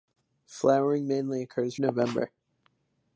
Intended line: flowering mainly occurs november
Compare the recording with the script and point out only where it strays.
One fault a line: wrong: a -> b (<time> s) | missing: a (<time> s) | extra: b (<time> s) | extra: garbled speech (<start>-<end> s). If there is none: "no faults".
no faults